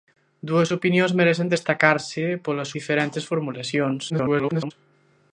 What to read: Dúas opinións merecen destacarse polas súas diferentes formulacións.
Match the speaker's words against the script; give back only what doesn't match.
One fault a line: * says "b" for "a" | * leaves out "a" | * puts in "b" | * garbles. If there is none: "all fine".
* leaves out "súas"
* garbles